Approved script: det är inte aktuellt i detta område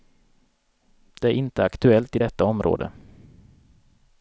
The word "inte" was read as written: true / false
true